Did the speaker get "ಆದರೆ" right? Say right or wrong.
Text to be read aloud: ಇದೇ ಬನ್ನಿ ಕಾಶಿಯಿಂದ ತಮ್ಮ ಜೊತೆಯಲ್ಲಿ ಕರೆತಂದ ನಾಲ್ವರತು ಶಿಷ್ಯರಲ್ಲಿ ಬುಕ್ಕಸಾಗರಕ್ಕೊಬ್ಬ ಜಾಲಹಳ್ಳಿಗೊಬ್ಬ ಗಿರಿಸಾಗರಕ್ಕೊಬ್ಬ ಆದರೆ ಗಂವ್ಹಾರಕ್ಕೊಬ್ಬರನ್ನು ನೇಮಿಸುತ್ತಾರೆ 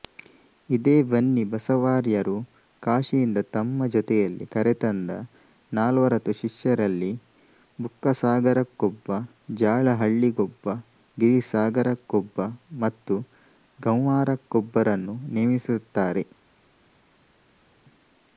wrong